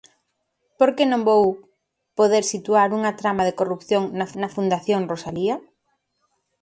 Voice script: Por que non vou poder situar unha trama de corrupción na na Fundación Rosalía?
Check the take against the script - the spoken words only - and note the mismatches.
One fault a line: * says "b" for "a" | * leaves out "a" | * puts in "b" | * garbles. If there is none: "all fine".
all fine